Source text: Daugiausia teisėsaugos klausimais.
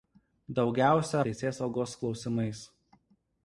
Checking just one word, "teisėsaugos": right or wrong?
right